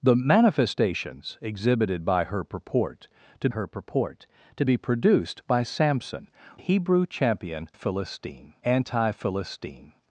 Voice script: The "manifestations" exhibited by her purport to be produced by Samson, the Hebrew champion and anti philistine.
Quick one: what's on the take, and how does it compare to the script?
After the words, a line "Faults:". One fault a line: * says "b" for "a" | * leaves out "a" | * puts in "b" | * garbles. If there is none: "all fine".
The "manifestations" exhibited by her purport to her purport to be produced by Samson, Hebrew champion philistine anti philistine.
Faults:
* puts in "her purport to"
* leaves out "the"
* says "philistine" for "and"